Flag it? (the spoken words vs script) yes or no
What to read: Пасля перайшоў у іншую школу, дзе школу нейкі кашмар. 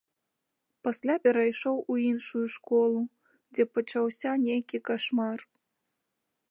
yes